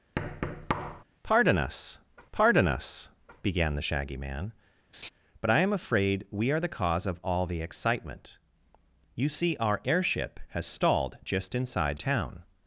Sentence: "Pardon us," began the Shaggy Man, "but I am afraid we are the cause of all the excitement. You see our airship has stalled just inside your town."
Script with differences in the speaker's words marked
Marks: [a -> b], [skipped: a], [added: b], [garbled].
"Pardon us," [added: pardon us] began the Shaggy Man, "but I am afraid we are the cause of all the excitement. You see our airship has stalled just inside [skipped: your] town."